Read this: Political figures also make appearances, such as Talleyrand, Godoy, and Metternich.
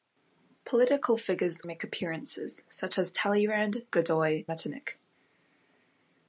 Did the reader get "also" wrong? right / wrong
wrong